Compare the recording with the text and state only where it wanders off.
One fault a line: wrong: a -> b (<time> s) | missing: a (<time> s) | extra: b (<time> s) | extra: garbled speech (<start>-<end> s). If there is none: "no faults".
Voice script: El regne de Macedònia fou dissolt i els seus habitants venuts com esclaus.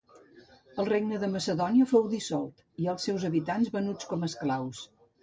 no faults